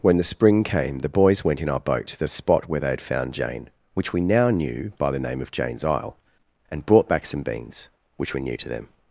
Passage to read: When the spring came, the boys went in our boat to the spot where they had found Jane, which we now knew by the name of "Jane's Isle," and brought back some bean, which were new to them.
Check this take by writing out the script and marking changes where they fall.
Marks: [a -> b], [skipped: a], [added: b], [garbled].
When the spring came, the boys went in our boat to the spot where they had found Jane, which we now knew by the name of "Jane's Isle," and brought back some [bean, -> beans] which were new to them.